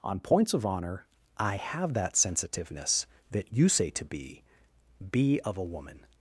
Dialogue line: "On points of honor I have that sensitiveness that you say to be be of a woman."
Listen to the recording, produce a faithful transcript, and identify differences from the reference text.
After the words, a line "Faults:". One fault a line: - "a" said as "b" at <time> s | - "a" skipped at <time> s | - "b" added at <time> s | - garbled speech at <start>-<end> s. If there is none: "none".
"On points of honor I have that sensitiveness that you say to be be of a woman."
Faults:
none